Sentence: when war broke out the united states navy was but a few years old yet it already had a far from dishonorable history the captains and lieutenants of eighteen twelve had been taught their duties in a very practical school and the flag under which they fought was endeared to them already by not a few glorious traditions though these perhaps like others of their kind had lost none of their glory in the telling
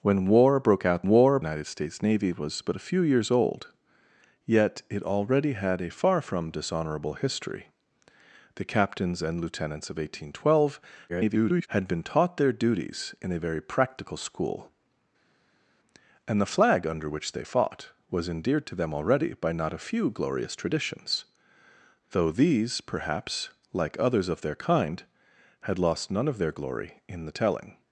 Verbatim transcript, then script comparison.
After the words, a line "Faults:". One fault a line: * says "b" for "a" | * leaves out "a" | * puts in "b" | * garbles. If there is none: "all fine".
when war broke out war united states navy was but a few years old yet it already had a far from dishonorable history the captains and lieutenants of eighteen twelve [garbled] had been taught their duties in a very practical school and the flag under which they fought was endeared to them already by not a few glorious traditions though these perhaps like others of their kind had lost none of their glory in the telling
Faults:
* says "war" for "the"
* garbles